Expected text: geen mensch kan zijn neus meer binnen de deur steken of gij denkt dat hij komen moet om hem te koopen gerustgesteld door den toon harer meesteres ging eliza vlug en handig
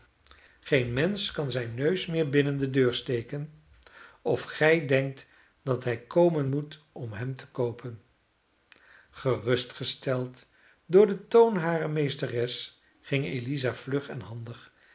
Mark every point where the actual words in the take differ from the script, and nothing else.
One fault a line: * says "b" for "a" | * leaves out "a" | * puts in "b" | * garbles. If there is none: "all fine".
all fine